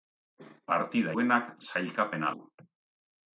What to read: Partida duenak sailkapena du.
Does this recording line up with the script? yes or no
yes